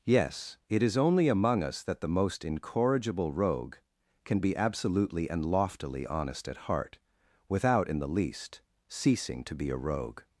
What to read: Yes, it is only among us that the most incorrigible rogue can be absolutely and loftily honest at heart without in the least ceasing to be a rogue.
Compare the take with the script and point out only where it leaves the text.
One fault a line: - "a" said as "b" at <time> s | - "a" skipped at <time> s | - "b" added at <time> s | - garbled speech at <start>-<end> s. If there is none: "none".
none